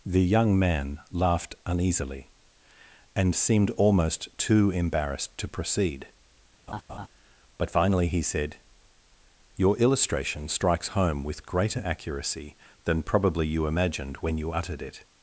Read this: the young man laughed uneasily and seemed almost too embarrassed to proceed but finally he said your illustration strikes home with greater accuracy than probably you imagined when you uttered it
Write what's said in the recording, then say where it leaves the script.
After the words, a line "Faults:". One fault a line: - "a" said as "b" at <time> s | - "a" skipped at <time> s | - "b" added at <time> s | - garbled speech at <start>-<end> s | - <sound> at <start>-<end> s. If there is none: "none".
the young man laughed uneasily and seemed almost too embarrassed to proceed but finally he said your illustration strikes home with greater accuracy than probably you imagined when you uttered it
Faults:
- laugh at 6.7-7.1 s